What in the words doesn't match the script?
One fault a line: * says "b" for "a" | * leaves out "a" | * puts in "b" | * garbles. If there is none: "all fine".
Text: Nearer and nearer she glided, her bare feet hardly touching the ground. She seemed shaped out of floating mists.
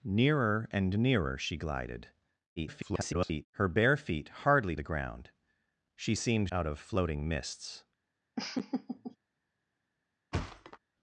* garbles
* leaves out "touching"
* leaves out "shaped"